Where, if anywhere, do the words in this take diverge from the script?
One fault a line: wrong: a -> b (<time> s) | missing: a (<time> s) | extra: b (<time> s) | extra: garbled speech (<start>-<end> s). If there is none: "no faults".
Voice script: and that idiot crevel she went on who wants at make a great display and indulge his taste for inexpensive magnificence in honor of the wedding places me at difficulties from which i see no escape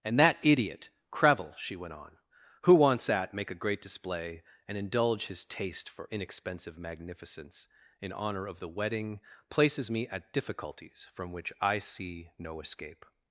no faults